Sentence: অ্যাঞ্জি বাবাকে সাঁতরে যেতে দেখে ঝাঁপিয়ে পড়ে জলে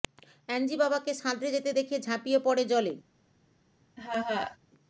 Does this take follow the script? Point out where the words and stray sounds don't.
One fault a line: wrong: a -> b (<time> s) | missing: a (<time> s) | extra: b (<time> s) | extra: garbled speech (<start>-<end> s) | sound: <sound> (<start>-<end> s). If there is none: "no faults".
sound: laugh (4.0-4.6 s)